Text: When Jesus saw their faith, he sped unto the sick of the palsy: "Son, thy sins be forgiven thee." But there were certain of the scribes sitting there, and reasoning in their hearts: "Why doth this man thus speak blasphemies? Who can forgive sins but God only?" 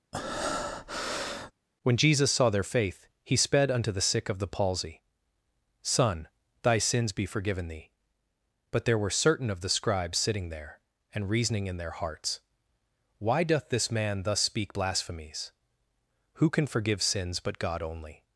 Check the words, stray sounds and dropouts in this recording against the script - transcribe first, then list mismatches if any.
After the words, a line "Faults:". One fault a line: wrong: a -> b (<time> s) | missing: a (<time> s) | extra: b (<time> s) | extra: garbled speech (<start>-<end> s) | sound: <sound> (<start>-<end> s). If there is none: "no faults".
When Jesus saw their faith, he sped unto the sick of the palsy: "Son, thy sins be forgiven thee." But there were certain of the scribes sitting there, and reasoning in their hearts: "Why doth this man thus speak blasphemies? Who can forgive sins but God only?"
Faults:
sound: breath (0.1-1.5 s)